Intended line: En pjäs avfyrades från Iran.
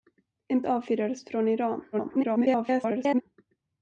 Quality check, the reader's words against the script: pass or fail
fail